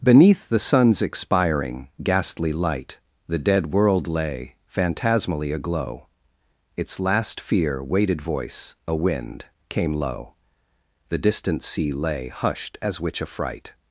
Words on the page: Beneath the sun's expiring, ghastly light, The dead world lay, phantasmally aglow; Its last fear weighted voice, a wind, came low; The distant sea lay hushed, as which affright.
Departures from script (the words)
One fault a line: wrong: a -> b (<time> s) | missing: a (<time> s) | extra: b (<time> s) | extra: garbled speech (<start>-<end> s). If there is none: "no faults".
no faults